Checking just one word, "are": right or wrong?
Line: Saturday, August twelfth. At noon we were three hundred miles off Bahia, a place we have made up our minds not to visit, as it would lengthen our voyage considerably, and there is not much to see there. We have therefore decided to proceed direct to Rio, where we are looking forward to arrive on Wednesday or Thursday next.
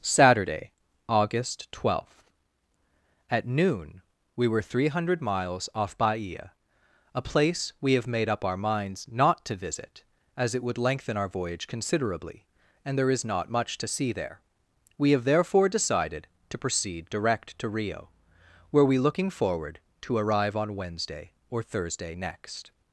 wrong